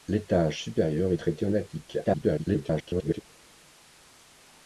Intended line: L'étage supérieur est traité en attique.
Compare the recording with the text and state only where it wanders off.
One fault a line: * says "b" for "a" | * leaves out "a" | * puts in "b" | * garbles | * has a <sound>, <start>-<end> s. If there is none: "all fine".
* garbles